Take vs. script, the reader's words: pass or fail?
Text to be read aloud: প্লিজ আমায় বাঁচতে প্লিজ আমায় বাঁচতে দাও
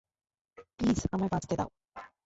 fail